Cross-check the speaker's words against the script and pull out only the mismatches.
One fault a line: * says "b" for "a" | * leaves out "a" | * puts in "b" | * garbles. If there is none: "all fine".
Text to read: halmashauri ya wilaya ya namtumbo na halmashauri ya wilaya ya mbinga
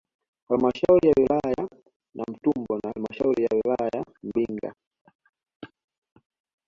all fine